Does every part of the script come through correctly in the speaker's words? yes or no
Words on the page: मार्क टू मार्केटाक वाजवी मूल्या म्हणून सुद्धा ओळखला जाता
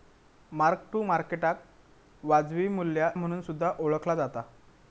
yes